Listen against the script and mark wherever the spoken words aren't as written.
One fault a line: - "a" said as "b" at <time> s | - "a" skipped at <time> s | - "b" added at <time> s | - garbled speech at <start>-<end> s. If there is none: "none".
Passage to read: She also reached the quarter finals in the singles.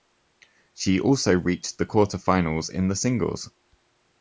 none